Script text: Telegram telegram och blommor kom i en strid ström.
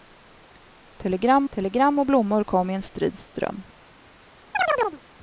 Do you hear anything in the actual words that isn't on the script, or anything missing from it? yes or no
no